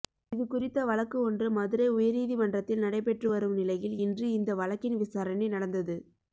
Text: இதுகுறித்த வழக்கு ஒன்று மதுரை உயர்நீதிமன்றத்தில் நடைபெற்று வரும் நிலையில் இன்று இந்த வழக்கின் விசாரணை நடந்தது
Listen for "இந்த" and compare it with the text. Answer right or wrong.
right